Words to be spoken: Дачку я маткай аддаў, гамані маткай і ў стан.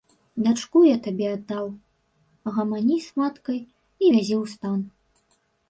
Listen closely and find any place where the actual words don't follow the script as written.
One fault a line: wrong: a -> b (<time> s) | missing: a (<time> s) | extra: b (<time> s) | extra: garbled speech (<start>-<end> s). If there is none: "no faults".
wrong: маткай -> табе (1.1 s)
extra: з (3.1 s)
extra: вязі (4.1 s)